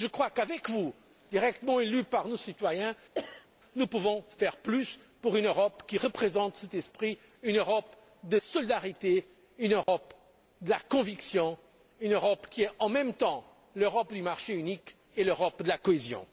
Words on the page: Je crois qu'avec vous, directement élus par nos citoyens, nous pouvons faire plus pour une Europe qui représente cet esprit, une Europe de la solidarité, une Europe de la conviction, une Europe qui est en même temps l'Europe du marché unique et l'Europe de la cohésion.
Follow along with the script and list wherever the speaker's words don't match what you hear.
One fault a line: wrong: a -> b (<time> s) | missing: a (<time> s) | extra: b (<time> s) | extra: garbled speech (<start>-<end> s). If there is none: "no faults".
missing: la (8.4 s)